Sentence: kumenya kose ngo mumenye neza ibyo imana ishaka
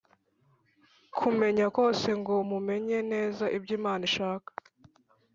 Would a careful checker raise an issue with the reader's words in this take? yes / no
no